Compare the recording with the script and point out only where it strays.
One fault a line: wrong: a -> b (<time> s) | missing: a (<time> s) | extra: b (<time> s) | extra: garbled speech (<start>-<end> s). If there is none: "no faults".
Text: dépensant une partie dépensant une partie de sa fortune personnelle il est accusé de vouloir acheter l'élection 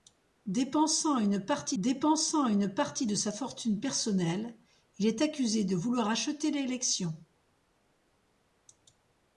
no faults